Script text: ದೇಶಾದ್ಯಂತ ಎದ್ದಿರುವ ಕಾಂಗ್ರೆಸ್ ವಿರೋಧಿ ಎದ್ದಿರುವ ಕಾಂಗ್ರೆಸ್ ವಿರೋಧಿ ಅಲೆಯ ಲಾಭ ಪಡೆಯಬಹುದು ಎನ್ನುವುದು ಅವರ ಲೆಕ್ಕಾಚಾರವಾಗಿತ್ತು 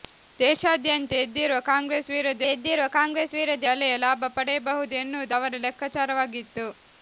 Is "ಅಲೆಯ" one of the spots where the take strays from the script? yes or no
no